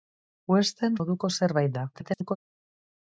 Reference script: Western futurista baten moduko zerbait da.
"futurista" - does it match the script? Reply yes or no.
no